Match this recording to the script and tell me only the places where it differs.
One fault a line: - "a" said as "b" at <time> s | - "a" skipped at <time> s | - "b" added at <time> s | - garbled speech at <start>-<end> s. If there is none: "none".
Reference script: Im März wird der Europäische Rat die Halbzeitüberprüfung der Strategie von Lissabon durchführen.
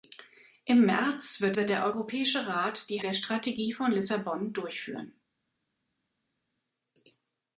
- "wird" added at 1.6 s
- "Halbzeitüberprüfung" skipped at 3.0 s